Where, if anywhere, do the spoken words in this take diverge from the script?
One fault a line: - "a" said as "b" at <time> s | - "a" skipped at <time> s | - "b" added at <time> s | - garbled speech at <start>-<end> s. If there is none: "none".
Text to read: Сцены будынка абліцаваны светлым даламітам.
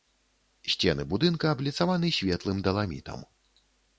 none